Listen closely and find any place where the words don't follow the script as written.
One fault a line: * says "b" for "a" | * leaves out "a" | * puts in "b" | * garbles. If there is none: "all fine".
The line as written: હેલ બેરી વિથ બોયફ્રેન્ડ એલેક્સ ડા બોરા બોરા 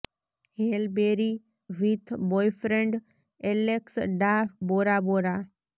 all fine